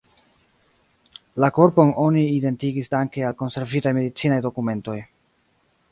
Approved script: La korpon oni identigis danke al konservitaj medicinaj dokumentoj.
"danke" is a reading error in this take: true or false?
false